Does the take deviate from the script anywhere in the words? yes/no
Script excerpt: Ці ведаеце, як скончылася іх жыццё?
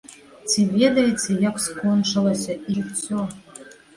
yes